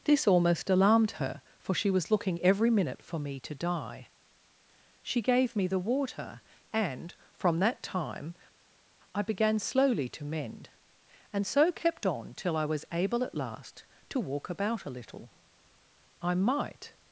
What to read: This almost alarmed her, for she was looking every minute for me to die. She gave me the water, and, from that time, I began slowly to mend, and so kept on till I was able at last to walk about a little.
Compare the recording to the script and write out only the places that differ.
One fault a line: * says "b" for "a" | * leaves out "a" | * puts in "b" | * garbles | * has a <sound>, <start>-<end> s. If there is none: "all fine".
* puts in "I might"